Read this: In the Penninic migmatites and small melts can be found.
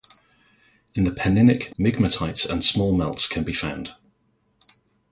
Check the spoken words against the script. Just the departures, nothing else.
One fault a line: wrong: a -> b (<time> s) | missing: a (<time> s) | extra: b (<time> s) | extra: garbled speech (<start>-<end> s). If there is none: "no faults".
no faults